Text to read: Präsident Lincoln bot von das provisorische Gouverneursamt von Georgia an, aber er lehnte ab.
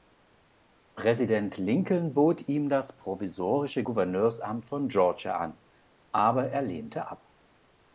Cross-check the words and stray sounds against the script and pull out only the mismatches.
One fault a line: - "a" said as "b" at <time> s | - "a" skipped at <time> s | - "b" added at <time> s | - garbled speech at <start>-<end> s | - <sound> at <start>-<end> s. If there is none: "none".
- "von" said as "ihm" at 2.5 s